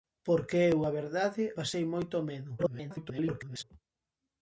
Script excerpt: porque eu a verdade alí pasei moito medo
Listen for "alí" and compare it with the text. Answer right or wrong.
wrong